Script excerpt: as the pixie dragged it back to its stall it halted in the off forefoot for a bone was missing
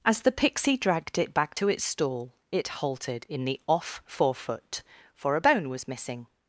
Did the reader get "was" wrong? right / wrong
right